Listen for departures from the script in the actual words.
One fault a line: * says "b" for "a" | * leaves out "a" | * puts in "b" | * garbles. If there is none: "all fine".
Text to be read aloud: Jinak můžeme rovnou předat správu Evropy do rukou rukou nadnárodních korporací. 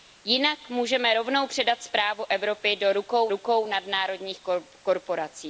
all fine